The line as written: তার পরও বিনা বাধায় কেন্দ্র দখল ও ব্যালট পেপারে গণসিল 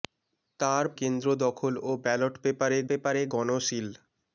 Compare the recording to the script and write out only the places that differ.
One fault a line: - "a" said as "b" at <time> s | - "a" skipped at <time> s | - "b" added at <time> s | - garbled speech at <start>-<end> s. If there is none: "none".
- "পরও বিনা বাধায়" skipped at 0.8 s
- "পেপারে" added at 2.9 s